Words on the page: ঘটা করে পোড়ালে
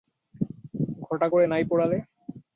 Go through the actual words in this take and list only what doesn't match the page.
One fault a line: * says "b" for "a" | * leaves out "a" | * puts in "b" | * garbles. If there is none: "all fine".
* puts in "নাই"